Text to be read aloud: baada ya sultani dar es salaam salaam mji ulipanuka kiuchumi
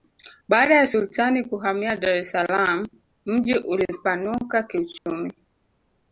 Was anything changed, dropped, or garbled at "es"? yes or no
no